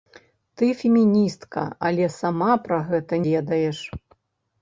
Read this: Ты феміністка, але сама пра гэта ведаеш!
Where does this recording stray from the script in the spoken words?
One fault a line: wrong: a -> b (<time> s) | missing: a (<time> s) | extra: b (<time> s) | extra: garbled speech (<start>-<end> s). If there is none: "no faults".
no faults